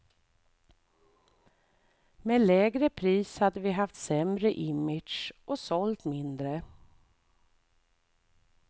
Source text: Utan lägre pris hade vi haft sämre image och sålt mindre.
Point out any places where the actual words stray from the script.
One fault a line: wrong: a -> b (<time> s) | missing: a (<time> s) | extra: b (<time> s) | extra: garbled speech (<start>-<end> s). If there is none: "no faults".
wrong: Utan -> Med (2.2 s)